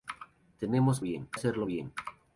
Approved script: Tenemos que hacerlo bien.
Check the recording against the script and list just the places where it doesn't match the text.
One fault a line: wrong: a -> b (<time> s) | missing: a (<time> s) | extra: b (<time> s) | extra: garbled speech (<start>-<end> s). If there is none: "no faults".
wrong: que -> bien (1.0 s)